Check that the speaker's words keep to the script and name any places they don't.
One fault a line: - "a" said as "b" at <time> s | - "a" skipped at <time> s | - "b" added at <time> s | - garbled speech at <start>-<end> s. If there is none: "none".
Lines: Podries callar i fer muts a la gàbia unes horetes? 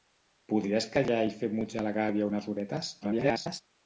- garbled speech at 3.0-3.6 s